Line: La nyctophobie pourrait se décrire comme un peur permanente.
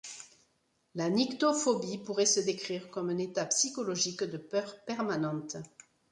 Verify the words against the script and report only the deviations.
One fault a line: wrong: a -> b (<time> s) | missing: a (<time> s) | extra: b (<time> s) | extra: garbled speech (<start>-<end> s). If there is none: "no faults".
extra: état psychologique de (3.2 s)